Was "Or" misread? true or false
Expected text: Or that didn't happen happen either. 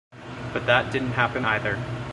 true